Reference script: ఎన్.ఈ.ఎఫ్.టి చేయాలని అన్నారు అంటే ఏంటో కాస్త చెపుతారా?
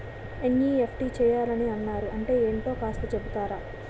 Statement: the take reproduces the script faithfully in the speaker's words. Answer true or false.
true